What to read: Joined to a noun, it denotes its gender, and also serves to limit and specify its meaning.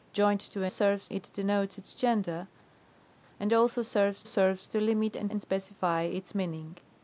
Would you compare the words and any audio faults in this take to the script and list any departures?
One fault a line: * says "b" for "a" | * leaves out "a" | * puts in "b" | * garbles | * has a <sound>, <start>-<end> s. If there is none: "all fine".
* says "serves" for "noun"
* puts in "serves"
* puts in "and"